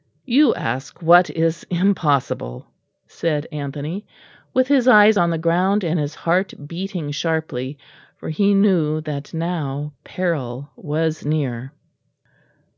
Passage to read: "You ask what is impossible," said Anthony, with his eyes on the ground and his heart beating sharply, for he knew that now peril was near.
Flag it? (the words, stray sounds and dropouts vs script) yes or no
no